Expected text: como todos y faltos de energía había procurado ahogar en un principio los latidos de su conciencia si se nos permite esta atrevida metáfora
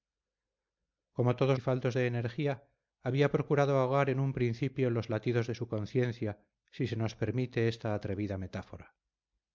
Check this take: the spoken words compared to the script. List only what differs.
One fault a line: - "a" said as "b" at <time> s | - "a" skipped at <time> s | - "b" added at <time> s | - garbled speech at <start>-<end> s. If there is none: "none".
none